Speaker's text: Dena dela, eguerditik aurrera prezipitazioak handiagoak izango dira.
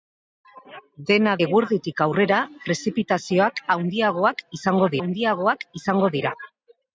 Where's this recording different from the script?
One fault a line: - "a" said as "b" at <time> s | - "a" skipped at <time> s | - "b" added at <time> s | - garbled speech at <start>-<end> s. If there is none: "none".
- "dela" skipped at 1.3 s
- "handiagoak izango" added at 5.0 s